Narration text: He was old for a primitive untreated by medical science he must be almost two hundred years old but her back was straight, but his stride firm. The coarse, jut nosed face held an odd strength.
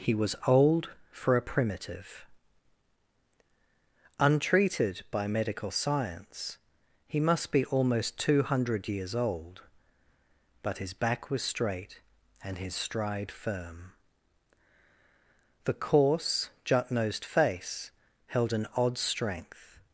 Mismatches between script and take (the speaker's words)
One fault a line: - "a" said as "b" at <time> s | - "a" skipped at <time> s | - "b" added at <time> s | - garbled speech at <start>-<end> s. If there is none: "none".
- "her" said as "his" at 10.8 s
- "but" said as "and" at 12.4 s